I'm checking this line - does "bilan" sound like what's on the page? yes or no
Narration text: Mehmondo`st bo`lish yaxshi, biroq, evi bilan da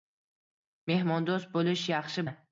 no